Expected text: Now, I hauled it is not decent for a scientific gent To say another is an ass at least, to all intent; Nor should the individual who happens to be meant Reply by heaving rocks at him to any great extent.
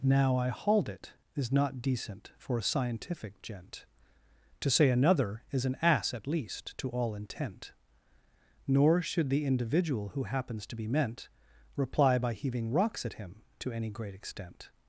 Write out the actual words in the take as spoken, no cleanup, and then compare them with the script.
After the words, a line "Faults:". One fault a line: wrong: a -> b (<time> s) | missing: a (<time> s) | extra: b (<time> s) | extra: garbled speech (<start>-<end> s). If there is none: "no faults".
Now, I hauled it is not decent for a scientific gent To say another is an ass at least, to all intent; Nor should the individual who happens to be meant Reply by heaving rocks at him to any great extent.
Faults:
no faults